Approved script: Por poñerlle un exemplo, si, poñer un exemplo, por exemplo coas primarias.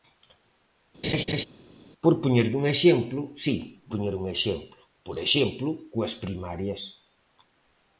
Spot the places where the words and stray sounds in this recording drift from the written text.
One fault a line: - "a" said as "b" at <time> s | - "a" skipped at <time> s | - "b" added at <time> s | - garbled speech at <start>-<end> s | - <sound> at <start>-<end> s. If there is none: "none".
- laugh at 1.0-1.4 s